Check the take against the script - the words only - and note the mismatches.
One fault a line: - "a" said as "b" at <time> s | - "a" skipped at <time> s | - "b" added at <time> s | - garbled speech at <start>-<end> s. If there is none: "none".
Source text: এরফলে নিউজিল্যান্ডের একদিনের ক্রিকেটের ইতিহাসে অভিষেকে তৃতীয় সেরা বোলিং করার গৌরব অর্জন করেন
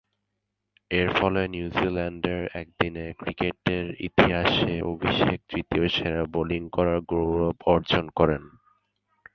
none